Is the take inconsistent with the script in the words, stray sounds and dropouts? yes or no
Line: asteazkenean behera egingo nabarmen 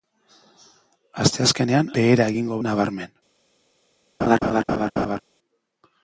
yes